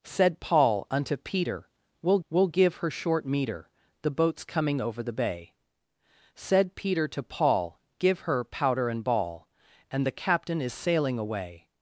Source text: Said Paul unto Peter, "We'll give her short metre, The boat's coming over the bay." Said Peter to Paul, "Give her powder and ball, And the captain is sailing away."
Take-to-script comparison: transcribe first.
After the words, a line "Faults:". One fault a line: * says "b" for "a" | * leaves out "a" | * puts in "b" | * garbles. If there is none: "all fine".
Said Paul unto Peter, "We'll we'll give her short metre, The boat's coming over the bay." Said Peter to Paul, "Give her powder and ball, And the captain is sailing away."
Faults:
* puts in "we'll"